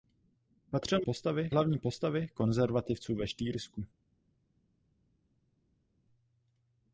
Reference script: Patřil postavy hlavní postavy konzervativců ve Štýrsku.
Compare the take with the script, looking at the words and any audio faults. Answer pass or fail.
pass